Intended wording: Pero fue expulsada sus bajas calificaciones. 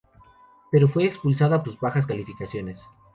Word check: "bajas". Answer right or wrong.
right